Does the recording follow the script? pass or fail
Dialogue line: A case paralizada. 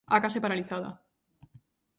pass